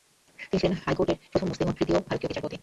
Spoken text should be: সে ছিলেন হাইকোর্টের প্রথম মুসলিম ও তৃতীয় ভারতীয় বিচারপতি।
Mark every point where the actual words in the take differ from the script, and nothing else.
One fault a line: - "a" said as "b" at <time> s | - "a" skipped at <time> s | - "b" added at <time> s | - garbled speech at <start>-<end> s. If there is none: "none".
- "সে" said as "তিনি" at 0.4 s